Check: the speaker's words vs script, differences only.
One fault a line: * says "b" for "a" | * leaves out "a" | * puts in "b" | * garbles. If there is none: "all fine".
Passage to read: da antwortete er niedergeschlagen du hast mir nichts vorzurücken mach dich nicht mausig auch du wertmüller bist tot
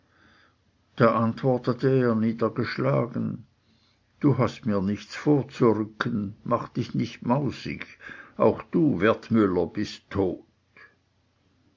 all fine